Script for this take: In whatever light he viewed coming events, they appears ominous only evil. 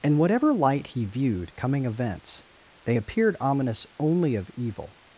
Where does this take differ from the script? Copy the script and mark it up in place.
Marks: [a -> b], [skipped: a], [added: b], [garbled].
In whatever light he viewed coming events, they [appears -> appeared] ominous only [added: of] evil.